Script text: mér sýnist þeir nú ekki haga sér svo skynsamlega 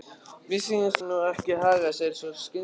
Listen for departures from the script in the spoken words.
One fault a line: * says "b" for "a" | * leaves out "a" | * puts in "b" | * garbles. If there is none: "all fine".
* leaves out "þeir"